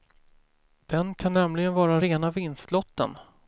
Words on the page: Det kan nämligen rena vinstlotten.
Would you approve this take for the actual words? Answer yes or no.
no